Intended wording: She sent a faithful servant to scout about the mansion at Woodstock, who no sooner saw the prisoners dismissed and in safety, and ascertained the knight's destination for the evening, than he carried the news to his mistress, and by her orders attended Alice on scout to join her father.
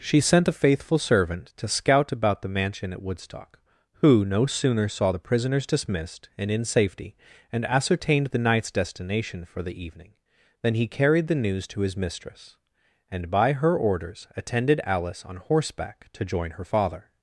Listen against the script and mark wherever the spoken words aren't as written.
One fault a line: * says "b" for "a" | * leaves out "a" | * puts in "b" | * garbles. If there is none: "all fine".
* says "horseback" for "scout"